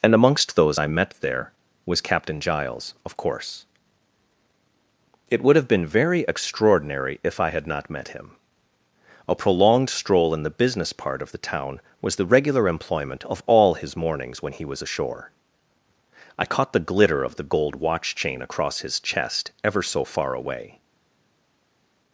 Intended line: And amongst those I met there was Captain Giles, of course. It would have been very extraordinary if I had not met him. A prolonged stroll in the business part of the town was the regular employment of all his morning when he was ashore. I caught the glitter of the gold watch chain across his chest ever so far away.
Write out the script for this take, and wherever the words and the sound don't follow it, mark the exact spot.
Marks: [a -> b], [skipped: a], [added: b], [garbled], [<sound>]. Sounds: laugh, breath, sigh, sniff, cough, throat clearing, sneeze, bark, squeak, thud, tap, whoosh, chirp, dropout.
And amongst those I met there was Captain Giles, of course. It would have been very extraordinary if I had not met him. A prolonged stroll in the business part of the town was the regular employment of all his [morning -> mornings] when he was ashore. I caught the glitter of the gold watch chain across his chest ever so far away.